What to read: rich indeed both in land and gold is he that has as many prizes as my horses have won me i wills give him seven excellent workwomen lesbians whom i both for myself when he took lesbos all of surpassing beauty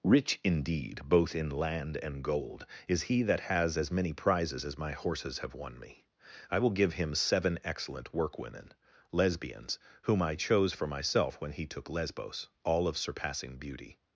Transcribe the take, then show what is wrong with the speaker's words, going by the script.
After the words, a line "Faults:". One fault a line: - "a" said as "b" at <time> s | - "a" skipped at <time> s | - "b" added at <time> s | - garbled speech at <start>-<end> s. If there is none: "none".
rich indeed both in land and gold is he that has as many prizes as my horses have won me i will give him seven excellent workwomen lesbians whom i chose for myself when he took lesbos all of surpassing beauty
Faults:
- "wills" said as "will" at 6.6 s
- "both" said as "chose" at 10.3 s